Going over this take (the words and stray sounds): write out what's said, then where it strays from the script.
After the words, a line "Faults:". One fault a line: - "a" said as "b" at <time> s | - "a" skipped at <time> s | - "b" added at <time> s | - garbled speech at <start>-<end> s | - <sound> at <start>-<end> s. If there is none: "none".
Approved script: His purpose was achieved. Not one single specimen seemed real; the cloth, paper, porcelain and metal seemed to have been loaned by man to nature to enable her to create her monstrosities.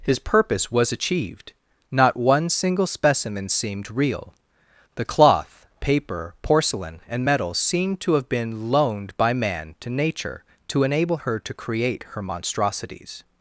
His purpose was achieved. Not one single specimen seemed real; the cloth, paper, porcelain and metal seemed to have been loaned by man to nature to enable her to create her monstrosities.
Faults:
none